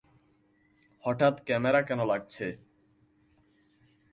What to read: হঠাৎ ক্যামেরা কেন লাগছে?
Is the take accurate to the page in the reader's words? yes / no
yes